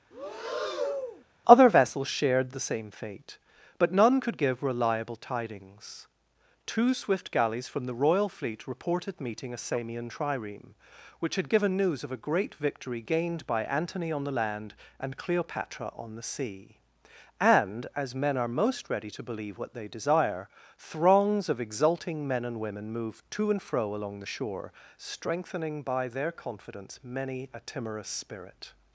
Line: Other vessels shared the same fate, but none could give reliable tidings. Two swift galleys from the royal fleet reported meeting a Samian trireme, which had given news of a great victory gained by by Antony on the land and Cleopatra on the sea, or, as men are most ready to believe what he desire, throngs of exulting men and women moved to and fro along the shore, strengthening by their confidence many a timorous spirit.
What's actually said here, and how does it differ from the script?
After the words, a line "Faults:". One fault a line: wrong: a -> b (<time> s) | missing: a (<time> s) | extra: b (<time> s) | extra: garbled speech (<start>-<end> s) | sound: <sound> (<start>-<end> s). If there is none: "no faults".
Other vessels shared the same fate, but none could give reliable tidings. Two swift galleys from the royal fleet reported meeting a Samian trireme, which had given news of a great victory gained by Antony on the land and Cleopatra on the sea, and, as men are most ready to believe what they desire, throngs of exulting men and women moved to and fro along the shore, strengthening by their confidence many a timorous spirit.
Faults:
sound: breath (0.1-1.2 s)
missing: by (13.6 s)
wrong: or -> and (17.4 s)
wrong: he -> they (19.7 s)